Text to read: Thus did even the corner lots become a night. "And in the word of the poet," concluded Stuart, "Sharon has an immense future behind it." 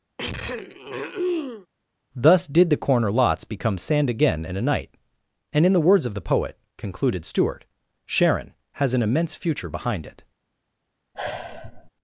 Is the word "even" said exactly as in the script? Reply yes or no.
no